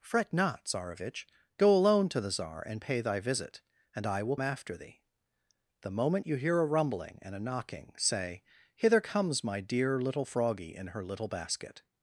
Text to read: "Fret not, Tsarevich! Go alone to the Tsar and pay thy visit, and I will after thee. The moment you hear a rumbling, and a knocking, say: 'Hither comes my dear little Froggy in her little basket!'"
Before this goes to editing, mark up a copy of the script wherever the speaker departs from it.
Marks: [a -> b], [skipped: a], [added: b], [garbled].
"Fret not, Tsarevich! Go alone to the Tsar and pay thy visit, and I will after thee. The moment you hear a rumbling, and a knocking, say: 'Hither comes my dear little Froggy in her little basket!'"